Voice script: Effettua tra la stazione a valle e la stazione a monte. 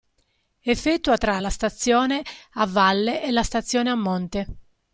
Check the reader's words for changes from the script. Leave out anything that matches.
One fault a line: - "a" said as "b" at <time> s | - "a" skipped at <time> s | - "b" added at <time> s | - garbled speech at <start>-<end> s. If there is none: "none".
none